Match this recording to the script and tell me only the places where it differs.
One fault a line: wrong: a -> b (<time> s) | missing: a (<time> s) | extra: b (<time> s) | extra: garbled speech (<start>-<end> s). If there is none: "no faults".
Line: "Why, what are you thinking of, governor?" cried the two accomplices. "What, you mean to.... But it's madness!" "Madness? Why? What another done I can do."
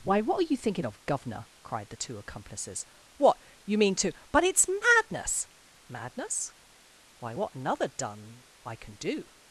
no faults